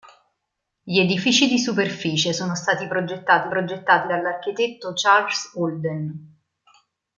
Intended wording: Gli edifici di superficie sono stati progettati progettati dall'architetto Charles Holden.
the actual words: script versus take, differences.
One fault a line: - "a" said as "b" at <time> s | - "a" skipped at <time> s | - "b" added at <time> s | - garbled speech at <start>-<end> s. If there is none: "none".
none